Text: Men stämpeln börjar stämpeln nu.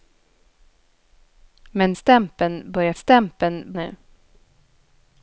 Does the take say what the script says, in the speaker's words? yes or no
yes